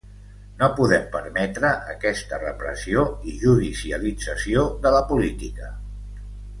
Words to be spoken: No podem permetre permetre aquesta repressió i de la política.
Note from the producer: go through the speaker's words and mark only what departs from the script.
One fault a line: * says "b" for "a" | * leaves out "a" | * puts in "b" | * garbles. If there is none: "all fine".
* leaves out "permetre"
* puts in "judicialització"